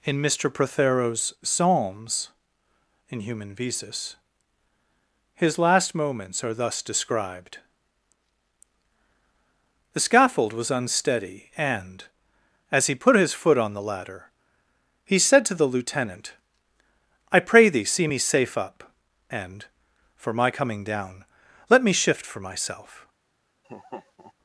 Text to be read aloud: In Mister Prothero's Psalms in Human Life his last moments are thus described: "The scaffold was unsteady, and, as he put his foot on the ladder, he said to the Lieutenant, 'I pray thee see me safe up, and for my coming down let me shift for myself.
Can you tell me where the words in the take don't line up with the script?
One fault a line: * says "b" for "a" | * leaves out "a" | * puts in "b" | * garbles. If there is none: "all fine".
* says "Visus" for "Life"